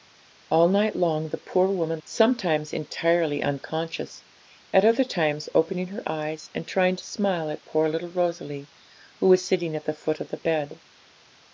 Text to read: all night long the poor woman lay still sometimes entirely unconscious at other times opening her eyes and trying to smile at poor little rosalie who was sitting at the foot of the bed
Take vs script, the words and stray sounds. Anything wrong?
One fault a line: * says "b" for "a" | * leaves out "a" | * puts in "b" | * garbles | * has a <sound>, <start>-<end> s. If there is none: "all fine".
* leaves out "lay still"